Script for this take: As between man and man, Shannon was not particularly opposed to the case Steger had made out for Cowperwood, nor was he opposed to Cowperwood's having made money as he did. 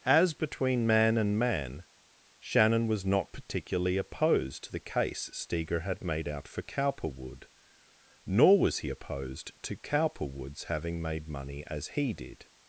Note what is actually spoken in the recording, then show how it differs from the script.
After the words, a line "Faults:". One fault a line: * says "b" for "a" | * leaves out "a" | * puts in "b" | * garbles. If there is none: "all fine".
As between man and man, Shannon was not particularly opposed to the case Steger had made out for Cowperwood, nor was he opposed to Cowperwood's having made money as he did.
Faults:
all fine